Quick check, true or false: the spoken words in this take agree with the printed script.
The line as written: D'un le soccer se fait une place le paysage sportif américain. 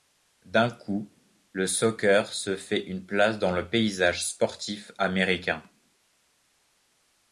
false